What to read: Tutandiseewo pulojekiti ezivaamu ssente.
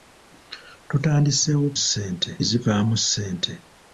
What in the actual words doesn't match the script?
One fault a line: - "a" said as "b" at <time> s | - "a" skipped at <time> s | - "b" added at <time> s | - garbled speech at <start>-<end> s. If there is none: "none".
- "pulojekiti" said as "ssente" at 1.8 s